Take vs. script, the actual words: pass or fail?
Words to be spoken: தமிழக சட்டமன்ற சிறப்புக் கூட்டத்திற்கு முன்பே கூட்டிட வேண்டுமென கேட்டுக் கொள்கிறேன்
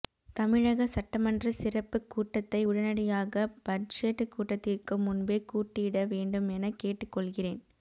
fail